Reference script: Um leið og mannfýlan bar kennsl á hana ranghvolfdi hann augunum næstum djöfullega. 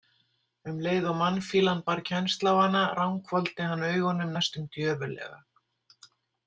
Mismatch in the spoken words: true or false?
false